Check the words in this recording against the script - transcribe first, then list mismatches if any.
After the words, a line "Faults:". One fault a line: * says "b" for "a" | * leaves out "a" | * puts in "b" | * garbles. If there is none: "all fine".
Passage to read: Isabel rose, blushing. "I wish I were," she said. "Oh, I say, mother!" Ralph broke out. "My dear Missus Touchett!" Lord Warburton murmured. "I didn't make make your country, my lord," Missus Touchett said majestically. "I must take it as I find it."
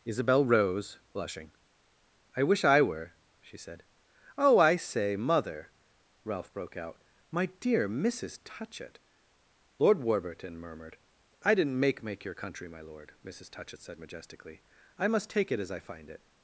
Isabel rose, blushing. "I wish I were," she said. "Oh, I say, mother!" Ralph broke out. "My dear Missus Touchett!" Lord Warburton murmured. "I didn't make make your country, my lord," Missus Touchett said majestically. "I must take it as I find it."
Faults:
all fine